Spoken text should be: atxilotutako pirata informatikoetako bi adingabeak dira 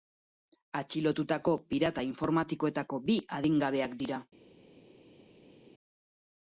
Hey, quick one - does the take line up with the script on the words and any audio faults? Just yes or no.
yes